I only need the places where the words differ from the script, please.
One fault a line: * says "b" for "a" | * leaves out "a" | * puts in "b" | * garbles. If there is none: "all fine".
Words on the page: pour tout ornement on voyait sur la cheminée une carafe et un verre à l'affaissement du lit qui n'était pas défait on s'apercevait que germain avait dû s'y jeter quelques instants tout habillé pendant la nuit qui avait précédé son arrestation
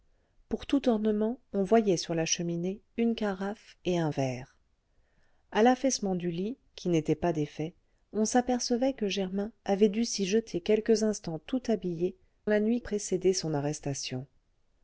* leaves out "pendant"
* leaves out "qui avait"